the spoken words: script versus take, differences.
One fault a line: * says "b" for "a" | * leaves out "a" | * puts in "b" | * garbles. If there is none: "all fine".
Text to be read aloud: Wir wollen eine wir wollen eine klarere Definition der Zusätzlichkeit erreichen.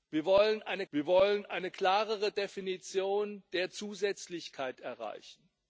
all fine